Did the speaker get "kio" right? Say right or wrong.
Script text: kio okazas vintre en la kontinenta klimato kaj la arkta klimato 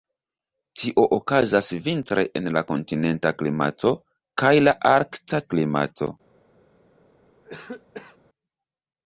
wrong